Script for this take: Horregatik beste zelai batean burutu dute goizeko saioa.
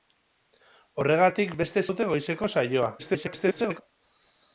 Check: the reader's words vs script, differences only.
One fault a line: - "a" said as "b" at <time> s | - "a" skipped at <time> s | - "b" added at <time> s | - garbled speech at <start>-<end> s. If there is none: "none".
- "zelai batean burutu" skipped at 1.8 s
- garbled speech at 3.0-3.8 s